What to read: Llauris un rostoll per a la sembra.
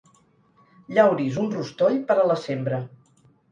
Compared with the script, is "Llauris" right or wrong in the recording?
right